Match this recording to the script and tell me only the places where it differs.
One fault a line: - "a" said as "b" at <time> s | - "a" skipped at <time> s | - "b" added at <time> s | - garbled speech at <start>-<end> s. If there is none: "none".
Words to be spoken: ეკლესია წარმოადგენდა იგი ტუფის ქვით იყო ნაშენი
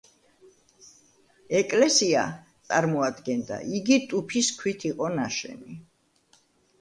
none